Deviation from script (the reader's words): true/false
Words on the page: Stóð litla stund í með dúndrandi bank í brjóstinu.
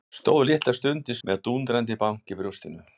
false